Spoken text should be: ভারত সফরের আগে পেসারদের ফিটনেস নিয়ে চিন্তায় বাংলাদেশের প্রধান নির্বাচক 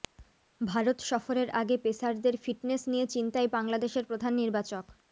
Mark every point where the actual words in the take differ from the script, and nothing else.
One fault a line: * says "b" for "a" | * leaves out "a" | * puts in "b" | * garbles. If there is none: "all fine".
all fine